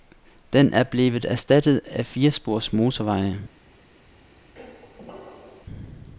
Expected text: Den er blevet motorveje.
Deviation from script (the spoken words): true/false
true